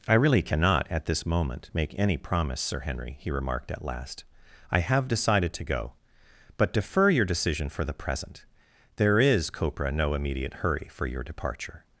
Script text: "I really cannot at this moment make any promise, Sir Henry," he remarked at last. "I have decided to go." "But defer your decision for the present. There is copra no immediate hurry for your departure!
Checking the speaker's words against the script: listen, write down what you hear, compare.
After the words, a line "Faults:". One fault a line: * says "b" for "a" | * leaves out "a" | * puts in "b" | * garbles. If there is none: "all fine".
"I really cannot at this moment make any promise, Sir Henry," he remarked at last. "I have decided to go." "But defer your decision for the present. There is copra no immediate hurry for your departure!
Faults:
all fine